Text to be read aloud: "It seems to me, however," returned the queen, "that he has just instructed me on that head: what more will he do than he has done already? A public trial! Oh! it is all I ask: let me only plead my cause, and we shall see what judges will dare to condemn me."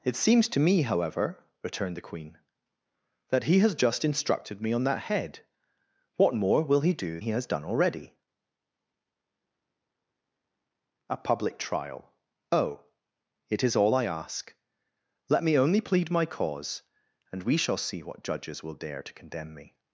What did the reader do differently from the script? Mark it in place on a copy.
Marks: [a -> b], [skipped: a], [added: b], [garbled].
"It seems to me, however," returned the queen, "that he has just instructed me on that head: what more will he do [skipped: than] he has done already? A public trial! Oh! it is all I ask: let me only plead my cause, and we shall see what judges will dare to condemn me."